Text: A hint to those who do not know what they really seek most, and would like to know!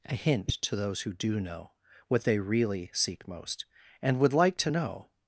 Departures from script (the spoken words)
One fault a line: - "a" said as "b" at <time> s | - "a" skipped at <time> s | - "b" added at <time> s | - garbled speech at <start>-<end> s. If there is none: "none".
- "not" skipped at 1.4 s